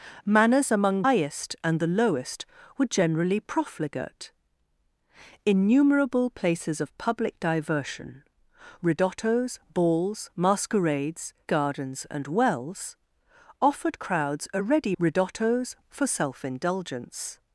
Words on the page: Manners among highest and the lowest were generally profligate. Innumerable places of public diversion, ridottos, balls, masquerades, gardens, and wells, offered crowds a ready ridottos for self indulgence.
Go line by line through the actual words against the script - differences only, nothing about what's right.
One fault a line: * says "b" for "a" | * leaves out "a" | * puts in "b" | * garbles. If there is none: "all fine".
all fine